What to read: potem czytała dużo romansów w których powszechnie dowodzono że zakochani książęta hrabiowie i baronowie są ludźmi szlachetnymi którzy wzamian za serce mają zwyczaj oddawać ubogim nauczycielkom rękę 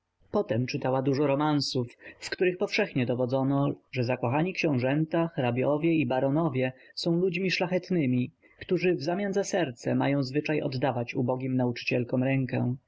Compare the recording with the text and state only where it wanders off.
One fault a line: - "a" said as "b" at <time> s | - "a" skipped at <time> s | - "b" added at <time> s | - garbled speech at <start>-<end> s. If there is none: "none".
none